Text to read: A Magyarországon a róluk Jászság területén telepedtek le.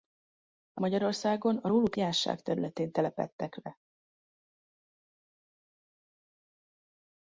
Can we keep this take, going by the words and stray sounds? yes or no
yes